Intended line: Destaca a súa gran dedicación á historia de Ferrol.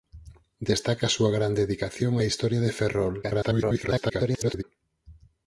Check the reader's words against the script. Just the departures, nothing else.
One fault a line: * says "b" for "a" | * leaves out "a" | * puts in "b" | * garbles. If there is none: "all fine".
* garbles